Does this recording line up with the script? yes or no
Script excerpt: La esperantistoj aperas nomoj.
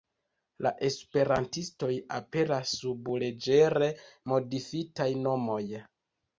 no